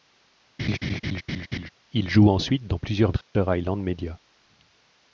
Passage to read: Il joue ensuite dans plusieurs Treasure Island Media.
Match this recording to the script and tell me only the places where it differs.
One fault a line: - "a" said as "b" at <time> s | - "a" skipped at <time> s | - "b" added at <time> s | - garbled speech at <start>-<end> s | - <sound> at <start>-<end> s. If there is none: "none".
- laugh at 0.6-1.7 s
- dropout at 3.2-3.3 s